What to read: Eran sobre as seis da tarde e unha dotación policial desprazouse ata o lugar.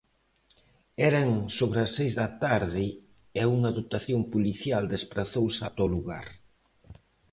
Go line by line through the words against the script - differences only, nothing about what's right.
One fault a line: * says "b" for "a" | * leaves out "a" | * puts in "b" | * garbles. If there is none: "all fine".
all fine